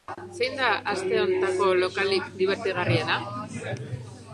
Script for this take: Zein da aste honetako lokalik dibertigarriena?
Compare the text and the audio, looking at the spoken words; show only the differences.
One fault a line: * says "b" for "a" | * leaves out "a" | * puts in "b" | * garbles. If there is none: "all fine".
all fine